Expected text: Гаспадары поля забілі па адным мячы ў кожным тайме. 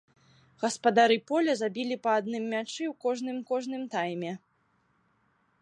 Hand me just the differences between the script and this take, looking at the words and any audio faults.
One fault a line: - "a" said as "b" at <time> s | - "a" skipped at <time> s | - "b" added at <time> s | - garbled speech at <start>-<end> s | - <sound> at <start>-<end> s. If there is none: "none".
- "кожным" added at 3.5 s